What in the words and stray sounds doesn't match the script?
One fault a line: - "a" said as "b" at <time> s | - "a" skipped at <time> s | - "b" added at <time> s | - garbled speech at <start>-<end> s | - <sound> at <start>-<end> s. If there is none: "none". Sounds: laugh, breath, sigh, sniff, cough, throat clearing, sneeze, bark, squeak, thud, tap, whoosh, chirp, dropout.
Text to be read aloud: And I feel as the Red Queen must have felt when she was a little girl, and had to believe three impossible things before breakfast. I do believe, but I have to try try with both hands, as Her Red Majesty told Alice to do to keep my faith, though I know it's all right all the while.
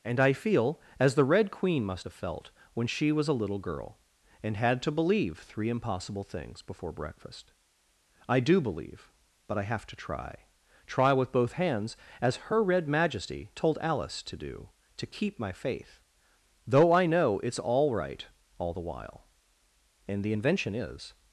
- "And the invention is" added at 20.1 s